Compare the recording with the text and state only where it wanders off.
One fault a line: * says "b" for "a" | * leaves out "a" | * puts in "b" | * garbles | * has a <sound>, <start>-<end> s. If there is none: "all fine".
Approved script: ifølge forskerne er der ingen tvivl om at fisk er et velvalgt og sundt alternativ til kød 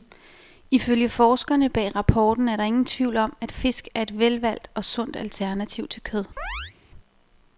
* puts in "bag rapporten"
* has a chirp, 6.4-6.8 s